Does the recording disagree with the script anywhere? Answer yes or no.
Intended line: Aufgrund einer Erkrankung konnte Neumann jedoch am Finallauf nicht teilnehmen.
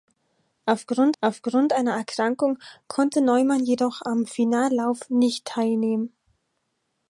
yes